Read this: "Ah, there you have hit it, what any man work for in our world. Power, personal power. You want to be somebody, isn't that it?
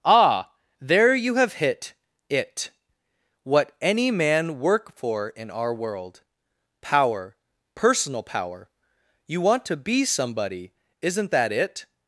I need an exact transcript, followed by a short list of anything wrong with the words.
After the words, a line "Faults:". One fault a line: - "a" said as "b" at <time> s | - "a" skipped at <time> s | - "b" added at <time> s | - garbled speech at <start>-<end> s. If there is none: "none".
"Ah, there you have hit it, what any man work for in our world. Power, personal power. You want to be somebody, isn't that it?
Faults:
none